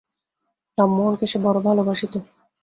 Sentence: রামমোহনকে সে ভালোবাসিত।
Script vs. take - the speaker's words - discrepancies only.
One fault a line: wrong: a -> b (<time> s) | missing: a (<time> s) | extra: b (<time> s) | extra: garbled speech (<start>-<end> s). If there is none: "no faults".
extra: বড়ো (1.4 s)